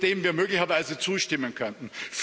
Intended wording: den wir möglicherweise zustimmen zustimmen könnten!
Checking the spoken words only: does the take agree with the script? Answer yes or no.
no